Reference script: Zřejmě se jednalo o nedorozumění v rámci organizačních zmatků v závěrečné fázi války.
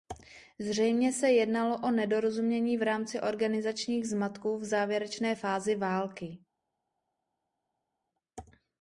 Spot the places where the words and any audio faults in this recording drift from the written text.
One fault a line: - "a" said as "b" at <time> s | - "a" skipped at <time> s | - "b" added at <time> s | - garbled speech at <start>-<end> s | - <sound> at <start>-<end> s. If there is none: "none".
none